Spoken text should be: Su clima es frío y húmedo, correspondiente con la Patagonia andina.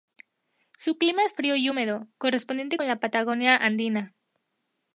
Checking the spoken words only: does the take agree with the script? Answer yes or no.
yes